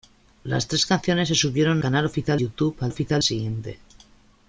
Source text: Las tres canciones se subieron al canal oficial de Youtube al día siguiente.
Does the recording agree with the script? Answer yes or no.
no